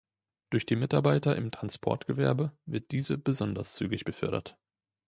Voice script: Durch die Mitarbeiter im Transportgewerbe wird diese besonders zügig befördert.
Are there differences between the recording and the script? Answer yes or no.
no